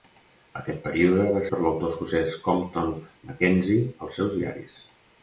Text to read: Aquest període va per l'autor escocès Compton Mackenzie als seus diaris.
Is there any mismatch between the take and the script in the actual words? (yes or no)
no